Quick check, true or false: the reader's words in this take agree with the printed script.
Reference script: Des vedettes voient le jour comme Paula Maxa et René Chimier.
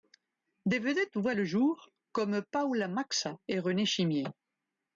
true